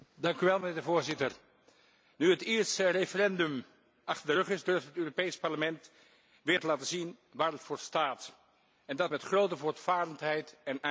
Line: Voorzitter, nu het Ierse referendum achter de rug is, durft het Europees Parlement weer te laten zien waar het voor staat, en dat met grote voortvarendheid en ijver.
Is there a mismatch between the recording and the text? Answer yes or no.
no